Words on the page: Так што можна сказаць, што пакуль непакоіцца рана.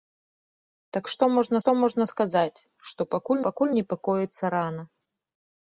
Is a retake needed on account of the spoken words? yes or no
yes